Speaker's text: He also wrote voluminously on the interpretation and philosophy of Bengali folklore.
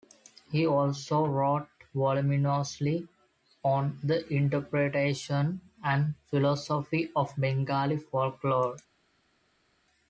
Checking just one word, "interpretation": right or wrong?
right